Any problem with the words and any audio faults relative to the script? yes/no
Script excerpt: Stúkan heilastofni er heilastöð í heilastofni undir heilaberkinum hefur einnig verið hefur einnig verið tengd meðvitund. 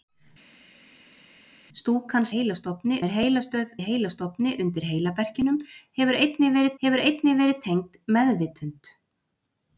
no